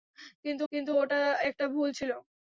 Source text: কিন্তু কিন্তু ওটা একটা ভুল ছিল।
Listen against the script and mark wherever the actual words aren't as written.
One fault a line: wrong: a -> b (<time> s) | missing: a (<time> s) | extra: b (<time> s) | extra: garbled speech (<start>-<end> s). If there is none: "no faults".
no faults